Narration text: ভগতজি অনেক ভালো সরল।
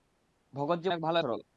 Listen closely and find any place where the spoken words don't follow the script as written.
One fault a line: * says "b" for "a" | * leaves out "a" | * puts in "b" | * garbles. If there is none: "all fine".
all fine